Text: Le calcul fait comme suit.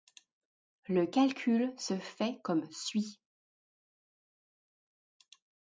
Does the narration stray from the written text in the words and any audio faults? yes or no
yes